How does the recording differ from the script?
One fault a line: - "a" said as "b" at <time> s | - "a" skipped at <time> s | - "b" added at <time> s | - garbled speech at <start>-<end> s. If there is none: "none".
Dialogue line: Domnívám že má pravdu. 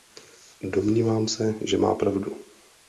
- "se" added at 1.3 s